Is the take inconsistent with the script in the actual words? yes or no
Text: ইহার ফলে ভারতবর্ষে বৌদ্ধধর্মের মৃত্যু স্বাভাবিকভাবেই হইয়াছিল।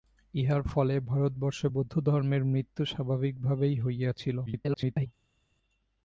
yes